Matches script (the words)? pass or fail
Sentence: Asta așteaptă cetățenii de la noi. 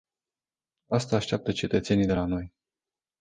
pass